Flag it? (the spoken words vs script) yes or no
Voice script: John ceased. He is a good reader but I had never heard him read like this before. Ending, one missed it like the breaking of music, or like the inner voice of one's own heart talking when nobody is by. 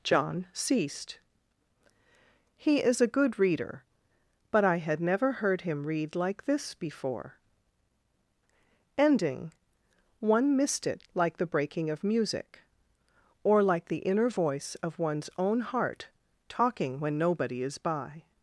no